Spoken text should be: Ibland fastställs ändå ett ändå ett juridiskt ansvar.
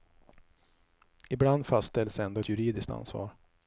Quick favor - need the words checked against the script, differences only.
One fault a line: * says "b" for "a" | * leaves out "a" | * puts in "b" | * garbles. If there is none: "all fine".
* leaves out "ändå ett"